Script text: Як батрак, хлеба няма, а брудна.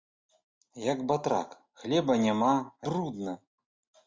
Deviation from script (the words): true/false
false